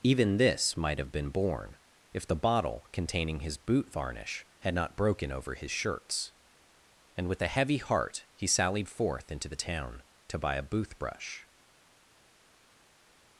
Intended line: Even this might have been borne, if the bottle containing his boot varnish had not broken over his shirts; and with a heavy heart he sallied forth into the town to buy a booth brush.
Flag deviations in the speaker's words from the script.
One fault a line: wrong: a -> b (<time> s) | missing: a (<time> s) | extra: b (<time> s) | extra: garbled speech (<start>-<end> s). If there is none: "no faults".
no faults